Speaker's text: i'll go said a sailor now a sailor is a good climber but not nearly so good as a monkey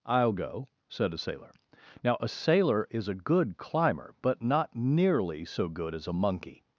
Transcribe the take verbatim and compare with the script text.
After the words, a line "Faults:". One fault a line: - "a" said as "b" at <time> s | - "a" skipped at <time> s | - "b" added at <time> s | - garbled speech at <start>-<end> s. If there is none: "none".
i'll go said a sailor now a sailor is a good climber but not nearly so good as a monkey
Faults:
none